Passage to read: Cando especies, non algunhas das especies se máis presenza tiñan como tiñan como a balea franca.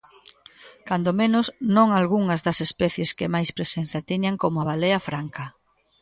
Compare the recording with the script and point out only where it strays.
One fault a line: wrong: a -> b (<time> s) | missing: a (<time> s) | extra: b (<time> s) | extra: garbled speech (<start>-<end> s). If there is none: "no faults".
wrong: especies -> menos (1.2 s)
wrong: se -> que (3.2 s)
missing: tiñan como (4.6 s)